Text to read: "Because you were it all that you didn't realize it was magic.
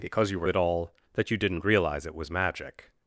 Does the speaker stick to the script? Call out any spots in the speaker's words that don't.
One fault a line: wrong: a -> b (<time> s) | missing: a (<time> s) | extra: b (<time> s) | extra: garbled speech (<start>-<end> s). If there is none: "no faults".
no faults